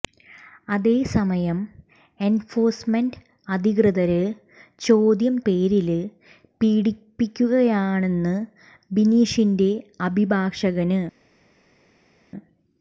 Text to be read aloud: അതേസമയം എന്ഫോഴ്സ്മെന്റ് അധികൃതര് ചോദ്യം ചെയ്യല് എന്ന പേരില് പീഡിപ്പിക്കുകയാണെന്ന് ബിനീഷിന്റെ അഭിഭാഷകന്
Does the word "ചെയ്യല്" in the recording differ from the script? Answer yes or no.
yes